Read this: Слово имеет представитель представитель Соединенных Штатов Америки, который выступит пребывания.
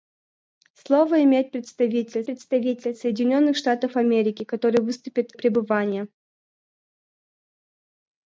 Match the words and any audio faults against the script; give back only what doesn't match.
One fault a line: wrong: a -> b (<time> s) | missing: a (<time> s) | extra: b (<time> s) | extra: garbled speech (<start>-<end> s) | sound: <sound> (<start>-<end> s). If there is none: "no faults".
no faults